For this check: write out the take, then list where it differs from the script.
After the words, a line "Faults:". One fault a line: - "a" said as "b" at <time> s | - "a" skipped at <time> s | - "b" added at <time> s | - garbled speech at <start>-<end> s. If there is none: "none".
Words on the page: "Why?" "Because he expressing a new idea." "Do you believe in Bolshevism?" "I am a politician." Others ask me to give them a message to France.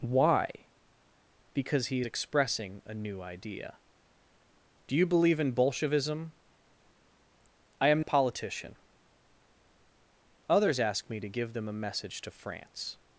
"Why?" "Because he expressing a new idea." "Do you believe in Bolshevism?" "I am a politician." Others ask me to give them a message to France.
Faults:
none